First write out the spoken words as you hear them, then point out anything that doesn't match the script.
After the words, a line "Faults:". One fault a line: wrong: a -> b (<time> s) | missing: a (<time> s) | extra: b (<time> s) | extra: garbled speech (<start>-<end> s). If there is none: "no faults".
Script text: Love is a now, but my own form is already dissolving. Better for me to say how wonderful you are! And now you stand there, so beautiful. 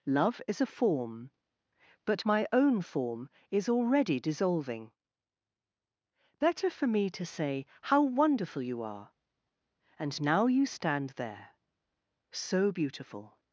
Love is a form, but my own form is already dissolving. Better for me to say how wonderful you are! And now you stand there, so beautiful.
Faults:
wrong: now -> form (0.7 s)